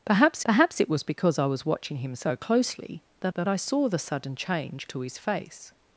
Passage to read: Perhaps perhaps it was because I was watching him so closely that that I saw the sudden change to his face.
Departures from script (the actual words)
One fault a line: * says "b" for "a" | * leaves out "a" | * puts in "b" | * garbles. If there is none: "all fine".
all fine